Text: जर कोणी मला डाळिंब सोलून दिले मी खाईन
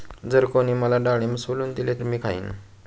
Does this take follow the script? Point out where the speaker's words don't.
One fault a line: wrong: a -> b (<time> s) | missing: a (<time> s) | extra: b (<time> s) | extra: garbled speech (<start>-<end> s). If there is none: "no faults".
no faults